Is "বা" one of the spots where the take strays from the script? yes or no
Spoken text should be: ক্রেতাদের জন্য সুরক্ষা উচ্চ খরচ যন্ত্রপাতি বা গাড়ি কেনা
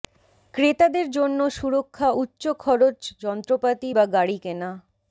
no